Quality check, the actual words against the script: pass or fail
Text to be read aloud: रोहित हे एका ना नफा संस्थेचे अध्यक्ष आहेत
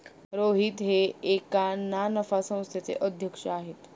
pass